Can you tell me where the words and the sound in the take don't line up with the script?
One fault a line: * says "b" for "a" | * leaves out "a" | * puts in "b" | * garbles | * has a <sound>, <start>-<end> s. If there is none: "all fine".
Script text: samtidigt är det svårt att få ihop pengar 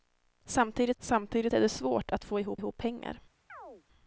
* puts in "samtidigt"
* puts in "ihop"
* has a chirp, 3.5-3.8 s